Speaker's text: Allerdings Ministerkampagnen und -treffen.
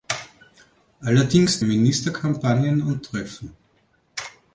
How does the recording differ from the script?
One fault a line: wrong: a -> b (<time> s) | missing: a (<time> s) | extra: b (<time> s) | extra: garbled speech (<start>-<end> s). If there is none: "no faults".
no faults